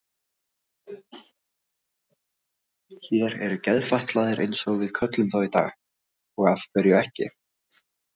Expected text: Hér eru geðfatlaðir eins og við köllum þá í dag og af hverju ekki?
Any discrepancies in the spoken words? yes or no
no